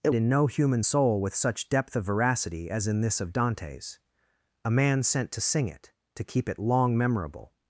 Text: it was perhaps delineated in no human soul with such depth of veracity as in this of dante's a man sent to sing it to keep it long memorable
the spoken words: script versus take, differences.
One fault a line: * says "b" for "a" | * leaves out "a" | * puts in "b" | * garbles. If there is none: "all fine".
* leaves out "was perhaps delineated"